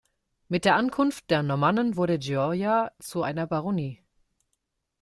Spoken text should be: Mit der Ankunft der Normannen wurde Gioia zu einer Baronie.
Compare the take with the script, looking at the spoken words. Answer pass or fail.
pass